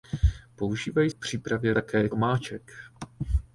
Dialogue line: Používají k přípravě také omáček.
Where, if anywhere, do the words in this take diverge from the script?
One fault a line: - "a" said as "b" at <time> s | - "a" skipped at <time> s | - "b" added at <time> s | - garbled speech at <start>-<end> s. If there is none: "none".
none